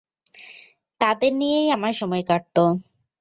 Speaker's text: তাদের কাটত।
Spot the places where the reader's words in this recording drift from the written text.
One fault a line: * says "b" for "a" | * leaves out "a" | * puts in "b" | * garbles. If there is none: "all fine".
* puts in "নিয়েই আমার সময়"